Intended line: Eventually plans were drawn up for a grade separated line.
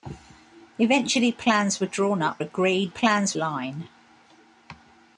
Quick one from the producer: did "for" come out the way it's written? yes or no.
no